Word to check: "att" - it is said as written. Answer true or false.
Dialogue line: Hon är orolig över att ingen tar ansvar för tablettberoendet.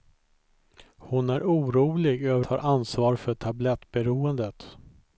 false